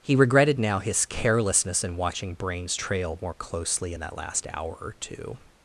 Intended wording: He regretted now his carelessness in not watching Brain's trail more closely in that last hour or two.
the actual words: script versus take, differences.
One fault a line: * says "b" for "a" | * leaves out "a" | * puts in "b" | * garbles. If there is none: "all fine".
* leaves out "not"